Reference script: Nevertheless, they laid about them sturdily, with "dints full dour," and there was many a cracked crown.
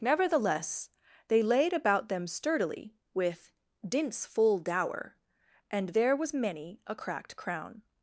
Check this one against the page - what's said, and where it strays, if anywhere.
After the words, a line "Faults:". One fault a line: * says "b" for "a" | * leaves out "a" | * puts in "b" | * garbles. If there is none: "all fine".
Nevertheless, they laid about them sturdily, with "dints full dour," and there was many a cracked crown.
Faults:
all fine